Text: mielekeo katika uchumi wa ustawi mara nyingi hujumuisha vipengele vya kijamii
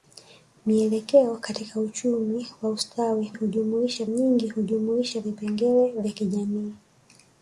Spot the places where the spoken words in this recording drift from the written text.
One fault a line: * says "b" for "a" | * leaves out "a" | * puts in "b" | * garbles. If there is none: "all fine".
* says "hujumuisha" for "mara"